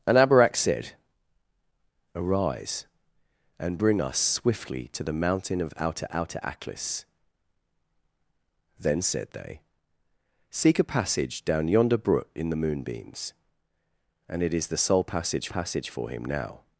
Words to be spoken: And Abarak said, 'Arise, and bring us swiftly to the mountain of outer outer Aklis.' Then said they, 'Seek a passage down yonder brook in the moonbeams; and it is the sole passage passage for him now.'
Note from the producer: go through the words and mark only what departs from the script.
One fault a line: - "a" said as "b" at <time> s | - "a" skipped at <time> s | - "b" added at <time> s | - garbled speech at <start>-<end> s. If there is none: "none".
none